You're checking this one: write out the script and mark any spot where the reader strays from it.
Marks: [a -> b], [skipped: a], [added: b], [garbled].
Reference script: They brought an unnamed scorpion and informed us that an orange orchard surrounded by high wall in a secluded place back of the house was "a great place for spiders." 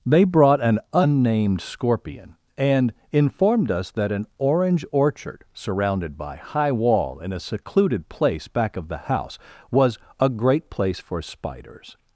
They brought an unnamed scorpion and informed us that an orange orchard surrounded by high wall in a secluded place back of the house was "a great place for spiders."